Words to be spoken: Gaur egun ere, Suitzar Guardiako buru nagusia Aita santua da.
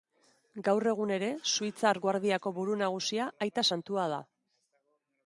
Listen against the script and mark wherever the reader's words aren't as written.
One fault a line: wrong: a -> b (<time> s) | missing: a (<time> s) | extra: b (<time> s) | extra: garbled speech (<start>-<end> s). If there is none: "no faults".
no faults